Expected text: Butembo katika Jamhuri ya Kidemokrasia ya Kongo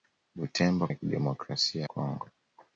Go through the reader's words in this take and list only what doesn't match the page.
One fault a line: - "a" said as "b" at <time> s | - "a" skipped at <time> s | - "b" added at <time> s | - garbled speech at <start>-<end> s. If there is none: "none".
- "katika Jamhuri" skipped at 0.9 s
- "ya" skipped at 1.8 s